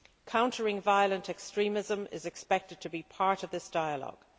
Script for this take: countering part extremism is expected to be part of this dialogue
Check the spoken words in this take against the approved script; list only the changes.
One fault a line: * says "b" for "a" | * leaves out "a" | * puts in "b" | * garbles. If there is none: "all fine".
* says "violent" for "part"